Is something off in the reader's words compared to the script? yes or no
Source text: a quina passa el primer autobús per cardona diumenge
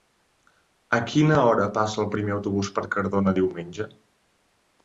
yes